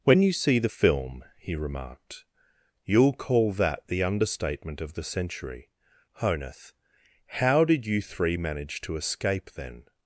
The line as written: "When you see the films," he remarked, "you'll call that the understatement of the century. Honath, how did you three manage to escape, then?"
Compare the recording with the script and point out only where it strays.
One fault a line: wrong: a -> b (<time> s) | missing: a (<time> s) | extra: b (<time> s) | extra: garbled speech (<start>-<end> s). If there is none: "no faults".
wrong: films -> film (0.6 s)